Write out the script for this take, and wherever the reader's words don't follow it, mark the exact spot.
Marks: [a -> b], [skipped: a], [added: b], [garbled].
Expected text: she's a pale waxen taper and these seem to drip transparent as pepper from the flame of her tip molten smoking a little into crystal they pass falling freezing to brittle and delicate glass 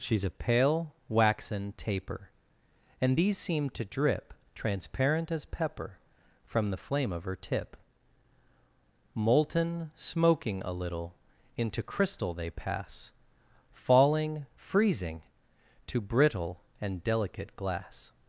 she's a pale waxen taper and these seem to drip transparent as pepper from the flame of her tip molten smoking a little into crystal they pass falling freezing to brittle and delicate glass